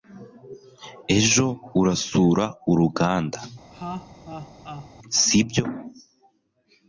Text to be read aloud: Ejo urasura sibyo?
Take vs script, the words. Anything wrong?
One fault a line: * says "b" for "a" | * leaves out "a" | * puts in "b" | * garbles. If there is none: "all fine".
* puts in "uruganda"